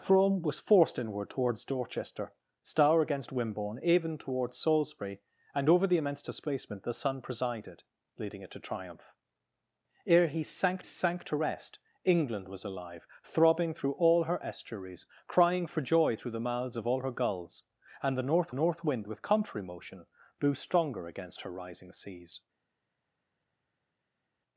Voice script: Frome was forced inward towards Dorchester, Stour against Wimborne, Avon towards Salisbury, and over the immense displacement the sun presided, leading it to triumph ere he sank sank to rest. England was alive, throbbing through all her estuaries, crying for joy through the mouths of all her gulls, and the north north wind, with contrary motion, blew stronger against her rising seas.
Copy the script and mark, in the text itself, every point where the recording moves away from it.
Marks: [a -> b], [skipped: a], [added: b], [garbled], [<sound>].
Frome was forced inward towards Dorchester, Stour against Wimborne, Avon towards Salisbury, and over the immense displacement the sun presided, leading it to triumph ere he sank sank to rest. England was alive, throbbing through all her estuaries, crying for joy through the mouths of all her gulls, and the north north wind, with contrary motion, blew stronger against her rising seas.